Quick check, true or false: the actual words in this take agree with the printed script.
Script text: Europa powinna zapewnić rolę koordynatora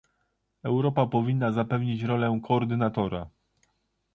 true